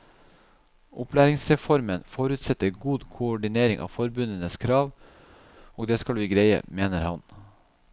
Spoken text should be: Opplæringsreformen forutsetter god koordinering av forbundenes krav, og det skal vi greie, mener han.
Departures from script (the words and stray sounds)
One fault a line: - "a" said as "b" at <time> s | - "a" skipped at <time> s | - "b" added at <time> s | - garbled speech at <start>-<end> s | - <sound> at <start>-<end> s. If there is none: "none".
none